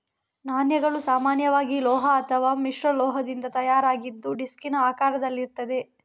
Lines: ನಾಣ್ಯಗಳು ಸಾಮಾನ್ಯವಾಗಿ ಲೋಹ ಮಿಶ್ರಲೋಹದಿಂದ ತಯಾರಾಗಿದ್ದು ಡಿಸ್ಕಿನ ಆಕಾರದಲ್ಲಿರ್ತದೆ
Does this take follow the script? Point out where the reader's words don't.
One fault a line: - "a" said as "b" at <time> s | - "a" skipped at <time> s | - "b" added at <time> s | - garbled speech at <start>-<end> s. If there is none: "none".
- "ಅಥವಾ" added at 2.1 s